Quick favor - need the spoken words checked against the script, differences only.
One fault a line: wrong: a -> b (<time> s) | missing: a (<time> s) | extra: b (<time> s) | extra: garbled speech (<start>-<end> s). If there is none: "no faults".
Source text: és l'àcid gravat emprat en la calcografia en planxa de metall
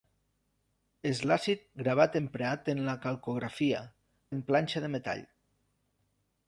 no faults